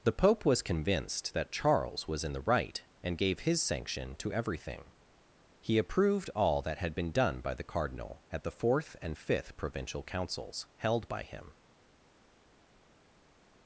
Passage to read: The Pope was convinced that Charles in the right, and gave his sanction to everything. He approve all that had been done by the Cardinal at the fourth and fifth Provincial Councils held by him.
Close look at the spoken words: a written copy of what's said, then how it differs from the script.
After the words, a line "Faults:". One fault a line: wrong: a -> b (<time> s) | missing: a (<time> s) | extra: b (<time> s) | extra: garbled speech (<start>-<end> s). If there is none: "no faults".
The Pope was convinced that Charles was in the right, and gave his sanction to everything. He approved all that had been done by the Cardinal at the fourth and fifth Provincial Councils held by him.
Faults:
extra: was (2.1 s)
wrong: approve -> approved (5.8 s)